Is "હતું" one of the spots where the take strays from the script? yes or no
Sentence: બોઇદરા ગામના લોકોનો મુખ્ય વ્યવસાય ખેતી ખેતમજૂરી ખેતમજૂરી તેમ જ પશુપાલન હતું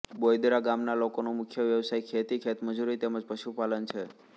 yes